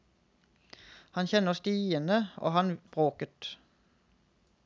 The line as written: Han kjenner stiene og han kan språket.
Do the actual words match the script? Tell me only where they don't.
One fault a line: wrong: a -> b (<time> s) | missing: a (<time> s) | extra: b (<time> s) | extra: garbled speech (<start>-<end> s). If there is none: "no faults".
missing: kan (2.7 s)